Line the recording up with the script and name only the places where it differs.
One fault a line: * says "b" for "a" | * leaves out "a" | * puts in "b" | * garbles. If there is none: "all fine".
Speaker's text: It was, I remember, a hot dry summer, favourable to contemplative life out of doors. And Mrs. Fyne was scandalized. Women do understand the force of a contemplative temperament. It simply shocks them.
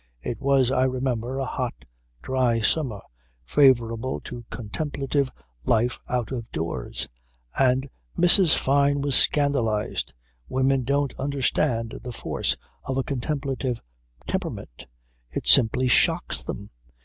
* says "don't" for "do"